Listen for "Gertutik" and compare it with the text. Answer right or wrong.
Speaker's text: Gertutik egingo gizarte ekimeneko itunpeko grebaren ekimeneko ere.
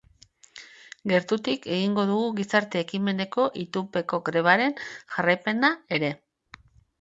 right